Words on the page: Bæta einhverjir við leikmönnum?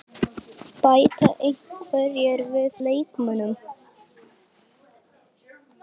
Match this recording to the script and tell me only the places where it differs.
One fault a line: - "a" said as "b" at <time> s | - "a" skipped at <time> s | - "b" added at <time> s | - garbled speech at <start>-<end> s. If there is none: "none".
none